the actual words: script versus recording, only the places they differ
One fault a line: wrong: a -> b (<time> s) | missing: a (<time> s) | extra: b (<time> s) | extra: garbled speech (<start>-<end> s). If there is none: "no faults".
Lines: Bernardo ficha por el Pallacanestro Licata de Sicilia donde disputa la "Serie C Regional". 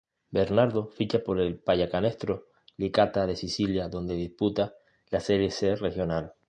no faults